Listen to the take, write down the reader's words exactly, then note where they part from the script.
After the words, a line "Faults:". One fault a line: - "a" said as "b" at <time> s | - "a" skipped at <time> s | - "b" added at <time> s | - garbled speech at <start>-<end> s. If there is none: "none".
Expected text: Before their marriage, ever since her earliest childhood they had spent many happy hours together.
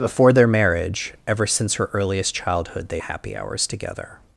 Before their marriage, ever since her earliest childhood they happy hours together.
Faults:
- "had spent many" skipped at 3.0 s